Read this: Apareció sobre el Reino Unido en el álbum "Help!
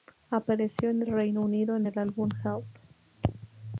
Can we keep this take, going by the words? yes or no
no